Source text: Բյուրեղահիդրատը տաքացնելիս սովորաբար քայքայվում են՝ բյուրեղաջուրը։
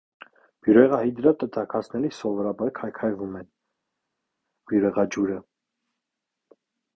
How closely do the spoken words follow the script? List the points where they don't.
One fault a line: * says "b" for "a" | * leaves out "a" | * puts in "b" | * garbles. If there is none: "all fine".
all fine